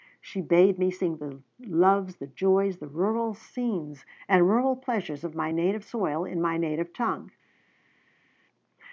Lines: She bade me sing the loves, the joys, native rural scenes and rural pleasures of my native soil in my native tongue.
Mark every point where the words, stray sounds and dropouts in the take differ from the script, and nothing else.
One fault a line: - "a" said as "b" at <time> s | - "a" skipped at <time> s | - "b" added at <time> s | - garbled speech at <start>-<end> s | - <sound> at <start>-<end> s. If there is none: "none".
- "native" said as "the" at 2.8 s